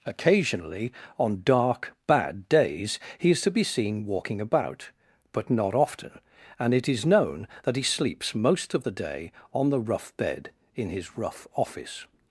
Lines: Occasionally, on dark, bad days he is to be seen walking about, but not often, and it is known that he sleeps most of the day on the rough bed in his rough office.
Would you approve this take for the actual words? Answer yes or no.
yes